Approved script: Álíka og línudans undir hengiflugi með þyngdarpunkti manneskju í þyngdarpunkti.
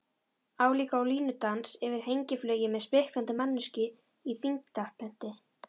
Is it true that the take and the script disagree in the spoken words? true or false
true